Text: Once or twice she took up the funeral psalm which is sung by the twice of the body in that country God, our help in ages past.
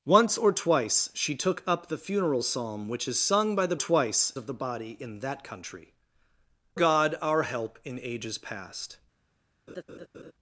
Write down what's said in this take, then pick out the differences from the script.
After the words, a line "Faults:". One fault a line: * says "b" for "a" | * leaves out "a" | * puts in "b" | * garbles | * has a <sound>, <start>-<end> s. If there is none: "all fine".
Once or twice she took up the funeral psalm which is sung by the twice of the body in that country God, our help in ages past.
Faults:
* has a laugh, 9.7-10.3 s